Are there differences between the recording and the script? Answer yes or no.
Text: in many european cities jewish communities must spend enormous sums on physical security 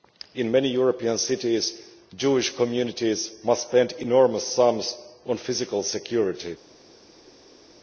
no